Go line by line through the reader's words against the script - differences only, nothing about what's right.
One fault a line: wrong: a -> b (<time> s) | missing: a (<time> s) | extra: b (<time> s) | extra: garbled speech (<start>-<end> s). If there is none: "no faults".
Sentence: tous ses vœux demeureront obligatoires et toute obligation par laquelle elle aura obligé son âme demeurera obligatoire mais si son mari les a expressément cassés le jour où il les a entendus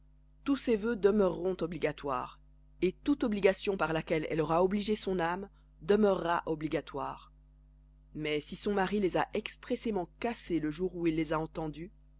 no faults